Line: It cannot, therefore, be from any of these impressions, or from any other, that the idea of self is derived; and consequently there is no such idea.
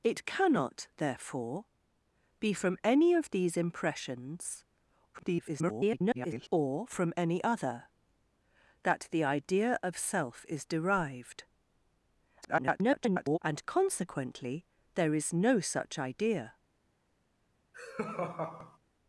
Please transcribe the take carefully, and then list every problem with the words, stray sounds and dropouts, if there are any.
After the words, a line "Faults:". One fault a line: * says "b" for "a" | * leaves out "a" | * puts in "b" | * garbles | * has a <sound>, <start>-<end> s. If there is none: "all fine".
It cannot, therefore, be from any of these impressions, [garbled] or from any other, that the idea of self is derived; [garbled] and consequently there is no such idea.
Faults:
* garbles
* garbles
* has a laugh, 17.7-18.8 s